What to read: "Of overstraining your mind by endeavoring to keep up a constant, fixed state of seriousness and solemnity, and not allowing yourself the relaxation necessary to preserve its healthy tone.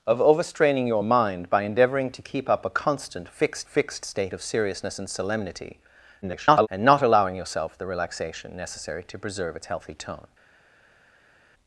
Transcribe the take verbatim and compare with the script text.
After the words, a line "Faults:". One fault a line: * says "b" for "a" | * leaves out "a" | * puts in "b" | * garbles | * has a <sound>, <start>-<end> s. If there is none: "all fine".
"Of overstraining your mind by endeavoring to keep up a constant, fixed fixed state of seriousness and solemnity, [garbled] and not allowing yourself the relaxation necessary to preserve its healthy tone.
Faults:
* puts in "fixed"
* garbles